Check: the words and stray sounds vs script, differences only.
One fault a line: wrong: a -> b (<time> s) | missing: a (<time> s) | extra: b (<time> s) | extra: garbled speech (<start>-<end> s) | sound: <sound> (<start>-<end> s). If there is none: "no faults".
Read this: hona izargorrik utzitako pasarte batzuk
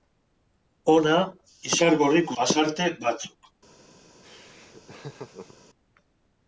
missing: utzitako (2.4 s)
sound: laugh (4.2-5.6 s)